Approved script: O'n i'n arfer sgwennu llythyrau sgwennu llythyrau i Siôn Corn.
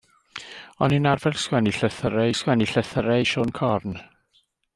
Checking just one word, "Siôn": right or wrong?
right